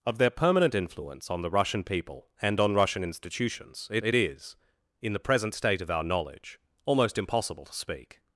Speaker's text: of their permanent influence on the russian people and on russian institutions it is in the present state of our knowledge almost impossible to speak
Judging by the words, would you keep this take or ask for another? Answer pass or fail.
fail